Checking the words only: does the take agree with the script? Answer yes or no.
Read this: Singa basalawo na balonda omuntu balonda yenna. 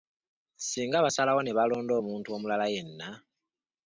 no